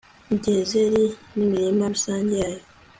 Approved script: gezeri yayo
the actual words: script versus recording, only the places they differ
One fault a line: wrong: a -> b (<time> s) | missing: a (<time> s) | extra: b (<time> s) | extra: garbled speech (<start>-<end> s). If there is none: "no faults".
extra: n'imirima rusange (1.4 s)